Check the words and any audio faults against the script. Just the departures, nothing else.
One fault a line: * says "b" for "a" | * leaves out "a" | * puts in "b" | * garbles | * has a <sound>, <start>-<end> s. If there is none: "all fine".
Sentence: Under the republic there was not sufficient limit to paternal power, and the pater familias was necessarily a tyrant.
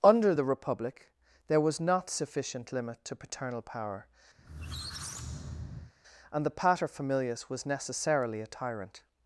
* has a squeak, 4.4-5.9 s